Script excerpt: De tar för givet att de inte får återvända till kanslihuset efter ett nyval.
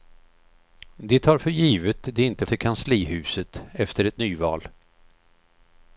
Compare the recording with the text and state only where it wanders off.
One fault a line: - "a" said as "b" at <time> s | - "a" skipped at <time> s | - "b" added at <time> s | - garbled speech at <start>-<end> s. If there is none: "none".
- "att" skipped at 2.1 s
- "får återvända" skipped at 2.4 s